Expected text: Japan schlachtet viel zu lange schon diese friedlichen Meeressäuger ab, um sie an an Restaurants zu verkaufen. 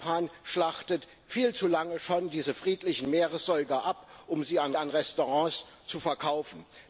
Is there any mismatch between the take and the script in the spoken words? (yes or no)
no